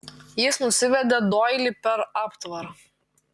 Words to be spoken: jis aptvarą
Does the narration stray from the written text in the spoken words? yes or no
yes